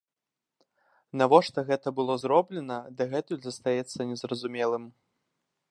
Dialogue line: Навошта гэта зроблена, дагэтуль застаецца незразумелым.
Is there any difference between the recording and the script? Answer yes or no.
yes